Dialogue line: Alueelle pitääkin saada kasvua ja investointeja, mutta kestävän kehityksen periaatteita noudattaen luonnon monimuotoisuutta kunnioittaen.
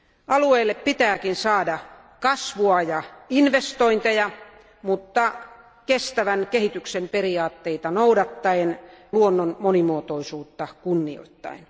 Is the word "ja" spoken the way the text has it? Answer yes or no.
yes